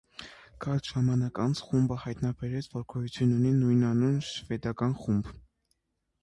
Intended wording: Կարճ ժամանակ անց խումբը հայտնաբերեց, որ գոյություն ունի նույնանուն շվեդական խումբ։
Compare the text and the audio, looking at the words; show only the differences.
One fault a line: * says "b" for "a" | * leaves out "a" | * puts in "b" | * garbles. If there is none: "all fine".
all fine